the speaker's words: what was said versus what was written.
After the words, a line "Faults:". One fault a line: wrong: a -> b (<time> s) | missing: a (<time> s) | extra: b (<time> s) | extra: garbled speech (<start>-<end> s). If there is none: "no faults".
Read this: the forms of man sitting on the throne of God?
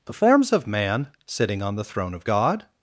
the forms of man sitting on the throne of God?
Faults:
no faults